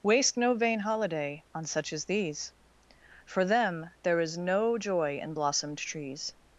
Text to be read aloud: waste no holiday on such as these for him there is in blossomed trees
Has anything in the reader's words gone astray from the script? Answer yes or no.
yes